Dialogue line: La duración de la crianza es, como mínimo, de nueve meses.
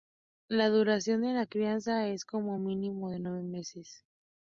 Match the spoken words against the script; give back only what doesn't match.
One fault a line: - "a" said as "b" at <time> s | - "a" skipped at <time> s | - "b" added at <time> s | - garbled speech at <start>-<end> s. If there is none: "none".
none